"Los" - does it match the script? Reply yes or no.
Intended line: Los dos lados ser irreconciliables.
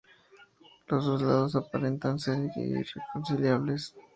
yes